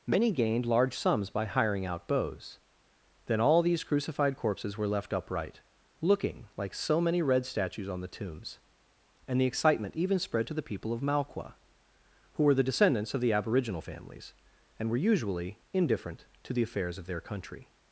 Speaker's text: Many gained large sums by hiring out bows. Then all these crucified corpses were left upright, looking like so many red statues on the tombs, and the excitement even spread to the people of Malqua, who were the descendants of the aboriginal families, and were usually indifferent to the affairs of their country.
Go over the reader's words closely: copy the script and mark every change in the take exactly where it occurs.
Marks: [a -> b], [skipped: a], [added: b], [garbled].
Many gained large sums by hiring out bows. Then all these crucified corpses were left upright, looking like so many red statues on the tombs, and the excitement even spread to the people of Malqua, who were the descendants of the aboriginal families, and were usually indifferent to the affairs of their country.